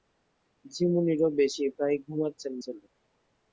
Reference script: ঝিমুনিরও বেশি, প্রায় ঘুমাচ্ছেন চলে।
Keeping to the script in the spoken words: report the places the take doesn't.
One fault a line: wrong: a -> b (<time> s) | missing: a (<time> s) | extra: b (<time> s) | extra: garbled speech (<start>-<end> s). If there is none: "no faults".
no faults